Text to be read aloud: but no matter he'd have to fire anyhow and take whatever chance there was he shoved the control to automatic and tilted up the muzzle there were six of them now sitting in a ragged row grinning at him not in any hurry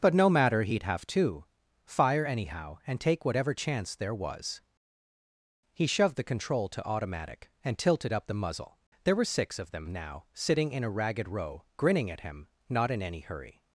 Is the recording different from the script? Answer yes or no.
no